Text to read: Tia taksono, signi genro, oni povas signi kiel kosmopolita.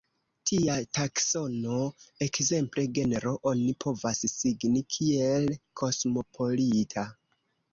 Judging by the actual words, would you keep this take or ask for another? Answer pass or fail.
fail